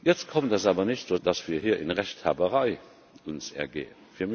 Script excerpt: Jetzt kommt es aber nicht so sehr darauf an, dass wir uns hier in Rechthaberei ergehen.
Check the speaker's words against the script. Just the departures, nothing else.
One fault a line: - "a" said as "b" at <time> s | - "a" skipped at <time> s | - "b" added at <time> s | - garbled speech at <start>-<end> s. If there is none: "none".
- "sehr darauf an" skipped at 1.1 s